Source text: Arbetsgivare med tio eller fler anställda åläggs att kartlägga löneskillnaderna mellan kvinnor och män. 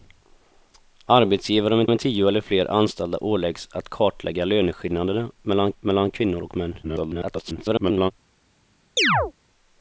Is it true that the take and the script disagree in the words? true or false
true